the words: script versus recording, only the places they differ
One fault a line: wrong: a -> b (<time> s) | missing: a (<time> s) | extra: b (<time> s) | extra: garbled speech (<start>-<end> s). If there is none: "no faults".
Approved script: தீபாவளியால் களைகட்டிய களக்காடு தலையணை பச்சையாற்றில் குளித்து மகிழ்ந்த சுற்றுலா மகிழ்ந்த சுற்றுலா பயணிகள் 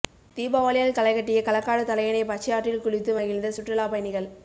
missing: மகிழ்ந்த சுற்றுலா (3.9 s)